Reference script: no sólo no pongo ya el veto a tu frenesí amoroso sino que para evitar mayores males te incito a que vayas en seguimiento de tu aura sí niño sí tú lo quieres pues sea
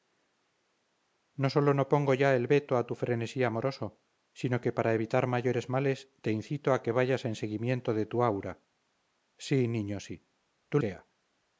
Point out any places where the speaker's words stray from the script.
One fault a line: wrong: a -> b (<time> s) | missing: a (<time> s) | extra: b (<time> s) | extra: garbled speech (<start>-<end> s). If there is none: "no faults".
missing: lo quieres pues (10.8 s)